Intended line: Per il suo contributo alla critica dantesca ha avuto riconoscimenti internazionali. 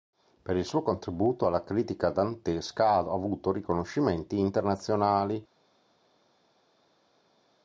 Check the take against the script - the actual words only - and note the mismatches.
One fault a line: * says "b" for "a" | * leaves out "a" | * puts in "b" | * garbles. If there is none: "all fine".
all fine